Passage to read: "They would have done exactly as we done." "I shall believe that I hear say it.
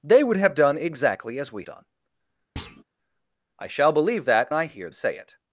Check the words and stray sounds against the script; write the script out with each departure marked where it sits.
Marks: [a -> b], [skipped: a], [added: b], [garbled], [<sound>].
"They would have done exactly as we done." [thud] "I shall believe that I hear say it.